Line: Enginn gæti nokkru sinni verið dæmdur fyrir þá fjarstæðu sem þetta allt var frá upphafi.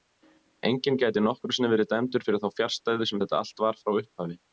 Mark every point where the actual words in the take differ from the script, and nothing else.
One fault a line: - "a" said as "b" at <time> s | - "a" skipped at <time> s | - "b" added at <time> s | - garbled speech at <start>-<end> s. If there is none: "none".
none